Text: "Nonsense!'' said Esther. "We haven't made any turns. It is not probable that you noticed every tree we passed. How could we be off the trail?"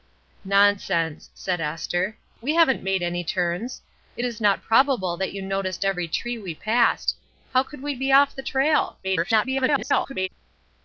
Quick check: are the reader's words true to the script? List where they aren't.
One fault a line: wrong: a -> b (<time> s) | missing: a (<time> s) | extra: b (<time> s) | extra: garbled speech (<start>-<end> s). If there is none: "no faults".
extra: garbled speech (9.0-10.3 s)